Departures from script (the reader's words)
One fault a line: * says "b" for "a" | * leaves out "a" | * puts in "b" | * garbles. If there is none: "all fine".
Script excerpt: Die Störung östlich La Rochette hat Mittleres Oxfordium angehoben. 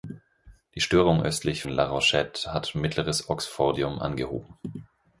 all fine